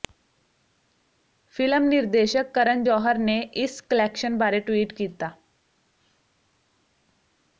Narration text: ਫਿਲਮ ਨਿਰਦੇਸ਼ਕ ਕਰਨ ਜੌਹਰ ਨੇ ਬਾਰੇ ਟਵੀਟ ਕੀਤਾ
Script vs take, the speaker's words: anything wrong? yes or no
yes